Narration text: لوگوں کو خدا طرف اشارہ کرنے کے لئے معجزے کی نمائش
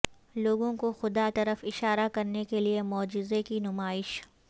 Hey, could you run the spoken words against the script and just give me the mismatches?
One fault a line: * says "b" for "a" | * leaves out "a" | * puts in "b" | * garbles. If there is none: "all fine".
all fine